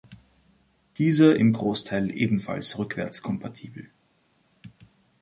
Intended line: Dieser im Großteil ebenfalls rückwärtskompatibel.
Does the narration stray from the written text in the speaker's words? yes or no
no